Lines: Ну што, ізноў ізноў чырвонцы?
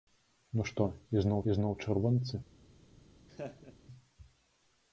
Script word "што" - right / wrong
right